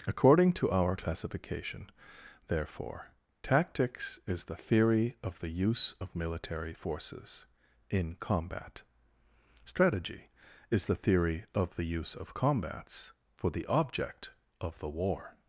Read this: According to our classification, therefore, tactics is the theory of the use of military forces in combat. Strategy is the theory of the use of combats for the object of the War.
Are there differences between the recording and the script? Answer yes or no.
no